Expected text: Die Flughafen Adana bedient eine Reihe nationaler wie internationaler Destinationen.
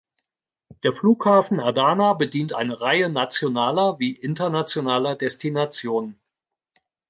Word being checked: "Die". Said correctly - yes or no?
no